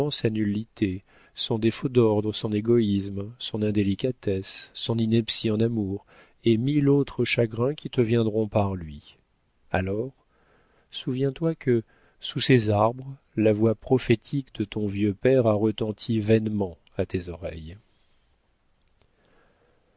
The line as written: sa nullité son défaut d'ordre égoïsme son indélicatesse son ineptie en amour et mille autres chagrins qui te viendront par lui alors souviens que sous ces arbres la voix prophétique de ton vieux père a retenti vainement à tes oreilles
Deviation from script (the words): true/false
true